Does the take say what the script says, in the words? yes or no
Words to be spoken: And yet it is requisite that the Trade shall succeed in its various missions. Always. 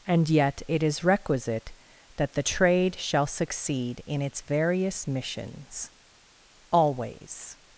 yes